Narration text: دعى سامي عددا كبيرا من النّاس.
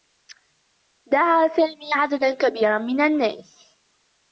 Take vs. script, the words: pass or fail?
pass